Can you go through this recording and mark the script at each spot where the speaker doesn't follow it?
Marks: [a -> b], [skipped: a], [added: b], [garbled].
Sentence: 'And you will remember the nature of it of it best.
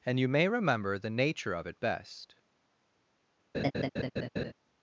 'And you [will -> may] remember the nature of it [skipped: of it] best.